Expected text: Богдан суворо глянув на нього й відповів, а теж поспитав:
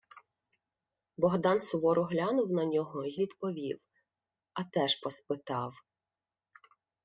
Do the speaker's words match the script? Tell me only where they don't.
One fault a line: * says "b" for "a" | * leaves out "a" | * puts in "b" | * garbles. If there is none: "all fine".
all fine